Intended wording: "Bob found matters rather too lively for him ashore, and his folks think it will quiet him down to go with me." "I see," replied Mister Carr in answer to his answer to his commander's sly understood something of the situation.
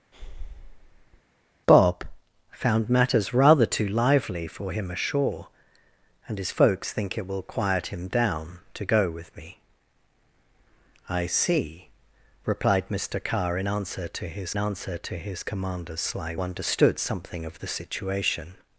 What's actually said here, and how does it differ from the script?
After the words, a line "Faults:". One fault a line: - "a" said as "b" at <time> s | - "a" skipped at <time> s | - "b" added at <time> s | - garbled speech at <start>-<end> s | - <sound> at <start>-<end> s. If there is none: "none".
"Bob found matters rather too lively for him ashore, and his folks think it will quiet him down to go with me." "I see," replied Mister Carr in answer to his answer to his commander's sly understood something of the situation.
Faults:
- breath at 0.1-1.2 s